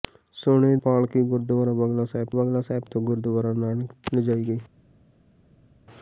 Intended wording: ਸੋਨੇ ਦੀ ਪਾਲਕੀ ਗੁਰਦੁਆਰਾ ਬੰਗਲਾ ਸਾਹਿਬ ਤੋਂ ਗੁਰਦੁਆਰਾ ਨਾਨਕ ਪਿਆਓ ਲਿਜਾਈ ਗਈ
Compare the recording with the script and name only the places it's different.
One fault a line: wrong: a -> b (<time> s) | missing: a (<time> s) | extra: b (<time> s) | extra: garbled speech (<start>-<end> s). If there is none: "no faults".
missing: ਦੀ (0.8 s)
extra: ਬੰਗਲਾ ਸਾਹਿਬ (2.3 s)
missing: ਪਿਆਓ (3.9 s)